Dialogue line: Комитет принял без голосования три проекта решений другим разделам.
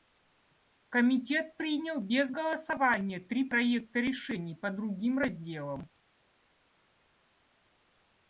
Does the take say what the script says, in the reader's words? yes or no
no